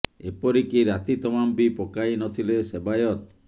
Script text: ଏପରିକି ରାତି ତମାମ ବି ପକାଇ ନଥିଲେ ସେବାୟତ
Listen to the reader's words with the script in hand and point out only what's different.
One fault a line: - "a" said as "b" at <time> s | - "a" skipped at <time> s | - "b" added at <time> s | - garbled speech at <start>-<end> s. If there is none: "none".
none